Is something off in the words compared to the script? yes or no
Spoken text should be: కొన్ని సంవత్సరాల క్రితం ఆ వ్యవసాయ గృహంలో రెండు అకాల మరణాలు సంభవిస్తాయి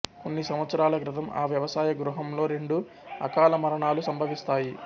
no